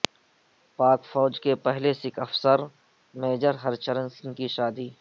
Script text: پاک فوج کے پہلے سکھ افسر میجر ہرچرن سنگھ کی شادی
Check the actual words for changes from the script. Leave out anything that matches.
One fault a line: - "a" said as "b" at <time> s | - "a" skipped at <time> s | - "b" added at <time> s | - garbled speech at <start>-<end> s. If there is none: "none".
none